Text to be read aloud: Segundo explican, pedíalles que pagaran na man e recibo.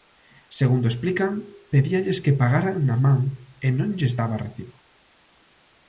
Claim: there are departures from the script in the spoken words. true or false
true